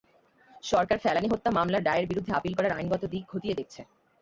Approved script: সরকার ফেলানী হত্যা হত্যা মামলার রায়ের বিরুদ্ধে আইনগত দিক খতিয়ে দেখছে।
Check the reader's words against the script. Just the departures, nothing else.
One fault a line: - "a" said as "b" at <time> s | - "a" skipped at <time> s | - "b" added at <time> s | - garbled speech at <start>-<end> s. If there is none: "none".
- "হত্যা" skipped at 1.5 s
- "আপিল করার" added at 2.3 s